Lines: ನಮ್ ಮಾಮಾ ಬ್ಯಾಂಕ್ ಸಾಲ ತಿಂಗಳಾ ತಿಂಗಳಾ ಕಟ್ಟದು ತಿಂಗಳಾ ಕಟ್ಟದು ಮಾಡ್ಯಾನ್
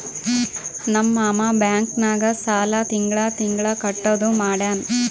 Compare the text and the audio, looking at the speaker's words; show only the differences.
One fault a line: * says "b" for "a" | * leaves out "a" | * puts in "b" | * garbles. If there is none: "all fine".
* puts in "ನಾಗ್"
* leaves out "ತಿಂಗಳಾ ಕಟ್ಟದು"